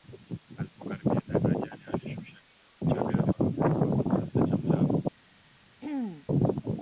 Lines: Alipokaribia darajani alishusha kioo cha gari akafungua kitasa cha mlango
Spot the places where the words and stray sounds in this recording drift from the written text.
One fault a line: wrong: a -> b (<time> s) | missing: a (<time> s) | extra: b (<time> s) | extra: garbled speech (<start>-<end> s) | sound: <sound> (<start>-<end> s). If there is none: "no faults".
sound: throat clearing (5.8-6.3 s)